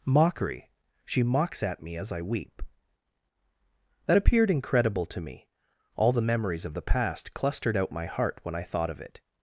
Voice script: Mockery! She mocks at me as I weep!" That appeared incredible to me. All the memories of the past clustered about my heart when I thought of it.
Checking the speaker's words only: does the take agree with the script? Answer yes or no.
no